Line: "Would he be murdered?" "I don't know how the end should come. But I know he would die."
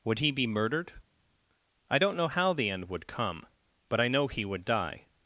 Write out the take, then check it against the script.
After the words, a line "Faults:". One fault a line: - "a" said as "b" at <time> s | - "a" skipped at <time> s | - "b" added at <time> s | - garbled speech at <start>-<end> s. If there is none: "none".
"Would he be murdered?" "I don't know how the end would come. But I know he would die."
Faults:
- "should" said as "would" at 2.9 s